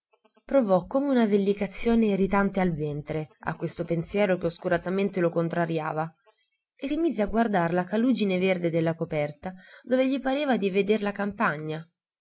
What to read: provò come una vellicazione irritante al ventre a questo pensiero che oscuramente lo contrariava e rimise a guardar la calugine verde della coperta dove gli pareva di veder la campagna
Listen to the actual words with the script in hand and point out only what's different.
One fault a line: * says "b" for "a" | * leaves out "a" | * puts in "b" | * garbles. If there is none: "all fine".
all fine